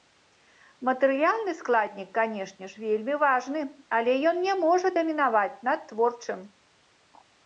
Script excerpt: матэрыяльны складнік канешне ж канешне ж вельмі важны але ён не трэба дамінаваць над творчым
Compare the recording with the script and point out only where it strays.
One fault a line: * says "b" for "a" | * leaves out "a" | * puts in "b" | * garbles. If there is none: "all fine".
* leaves out "канешне ж"
* says "можа" for "трэба"